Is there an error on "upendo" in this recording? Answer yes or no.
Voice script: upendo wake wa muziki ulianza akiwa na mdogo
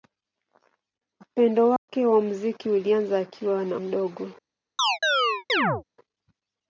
no